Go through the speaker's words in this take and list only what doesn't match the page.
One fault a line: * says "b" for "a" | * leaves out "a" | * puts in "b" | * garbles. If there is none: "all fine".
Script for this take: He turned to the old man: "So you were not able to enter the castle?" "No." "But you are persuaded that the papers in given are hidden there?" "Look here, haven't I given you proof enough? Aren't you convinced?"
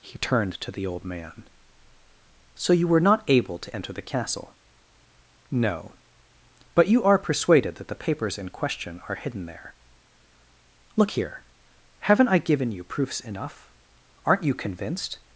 * says "question" for "given"
* says "proofs" for "proof"